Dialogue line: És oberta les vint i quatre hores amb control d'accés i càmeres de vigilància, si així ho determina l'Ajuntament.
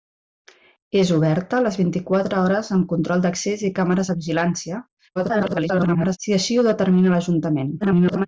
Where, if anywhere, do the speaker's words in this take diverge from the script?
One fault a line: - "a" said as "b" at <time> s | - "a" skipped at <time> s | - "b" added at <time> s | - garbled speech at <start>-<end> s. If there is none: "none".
- garbled speech at 5.2-6.2 s
- garbled speech at 7.8-8.3 s